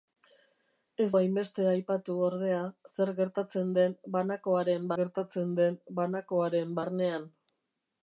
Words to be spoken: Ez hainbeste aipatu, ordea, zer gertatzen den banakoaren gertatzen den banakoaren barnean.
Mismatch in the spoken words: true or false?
false